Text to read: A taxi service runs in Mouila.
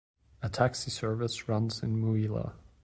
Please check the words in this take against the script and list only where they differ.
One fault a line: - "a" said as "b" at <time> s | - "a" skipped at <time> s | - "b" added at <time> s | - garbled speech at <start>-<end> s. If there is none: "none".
none